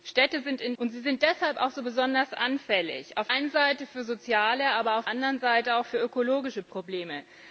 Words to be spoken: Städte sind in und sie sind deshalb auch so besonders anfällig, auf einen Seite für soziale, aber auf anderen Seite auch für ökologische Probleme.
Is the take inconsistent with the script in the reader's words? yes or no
no